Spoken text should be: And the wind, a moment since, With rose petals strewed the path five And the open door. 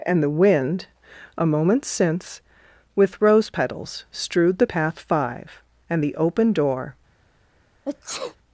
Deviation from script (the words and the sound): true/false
true